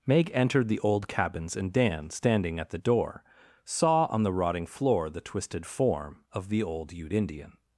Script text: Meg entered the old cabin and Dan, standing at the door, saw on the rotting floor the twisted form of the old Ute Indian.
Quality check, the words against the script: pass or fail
fail